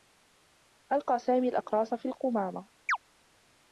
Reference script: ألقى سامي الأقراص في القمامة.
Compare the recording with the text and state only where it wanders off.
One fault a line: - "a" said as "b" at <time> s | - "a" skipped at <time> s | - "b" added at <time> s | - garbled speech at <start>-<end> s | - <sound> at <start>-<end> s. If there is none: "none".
- chirp at 2.9-3.0 s